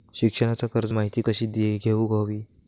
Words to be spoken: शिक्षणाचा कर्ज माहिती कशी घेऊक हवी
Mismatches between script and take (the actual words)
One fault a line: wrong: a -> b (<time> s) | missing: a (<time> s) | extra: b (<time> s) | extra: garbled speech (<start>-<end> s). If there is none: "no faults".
no faults